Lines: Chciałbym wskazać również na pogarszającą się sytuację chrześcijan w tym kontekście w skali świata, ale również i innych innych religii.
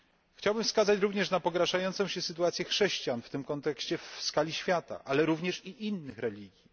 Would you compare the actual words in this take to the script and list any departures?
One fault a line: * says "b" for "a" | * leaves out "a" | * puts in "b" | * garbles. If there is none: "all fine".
* leaves out "innych"